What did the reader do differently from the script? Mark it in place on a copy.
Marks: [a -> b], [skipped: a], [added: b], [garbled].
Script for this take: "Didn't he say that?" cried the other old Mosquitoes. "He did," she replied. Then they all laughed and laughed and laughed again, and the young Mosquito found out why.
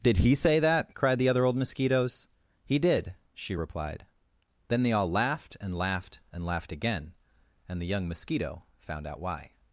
["Didn't -> Did] he say that?" cried the other old Mosquitoes. "He did," she replied. Then they all laughed and laughed and laughed again, and the young Mosquito found out why.